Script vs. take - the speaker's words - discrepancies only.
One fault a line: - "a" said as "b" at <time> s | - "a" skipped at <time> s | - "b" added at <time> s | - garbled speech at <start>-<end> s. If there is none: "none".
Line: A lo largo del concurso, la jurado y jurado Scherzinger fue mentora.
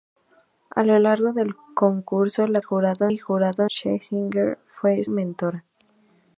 none